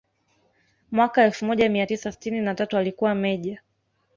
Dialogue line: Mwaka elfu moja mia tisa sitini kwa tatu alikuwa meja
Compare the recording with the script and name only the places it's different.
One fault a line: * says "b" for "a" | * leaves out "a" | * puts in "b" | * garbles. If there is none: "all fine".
* says "na" for "kwa"